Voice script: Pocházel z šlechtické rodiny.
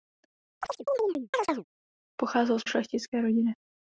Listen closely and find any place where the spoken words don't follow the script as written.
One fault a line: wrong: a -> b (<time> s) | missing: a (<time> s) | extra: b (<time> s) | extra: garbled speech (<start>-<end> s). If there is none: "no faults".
no faults